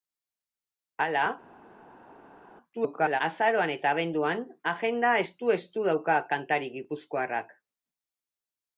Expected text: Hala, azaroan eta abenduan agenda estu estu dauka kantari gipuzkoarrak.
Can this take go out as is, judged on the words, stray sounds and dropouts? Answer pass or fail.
fail